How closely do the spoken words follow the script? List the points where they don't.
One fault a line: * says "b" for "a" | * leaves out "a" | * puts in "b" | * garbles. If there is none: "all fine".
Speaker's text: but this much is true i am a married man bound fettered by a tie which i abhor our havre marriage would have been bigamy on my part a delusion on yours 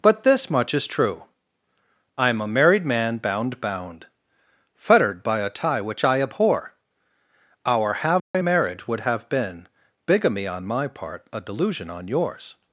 * puts in "bound"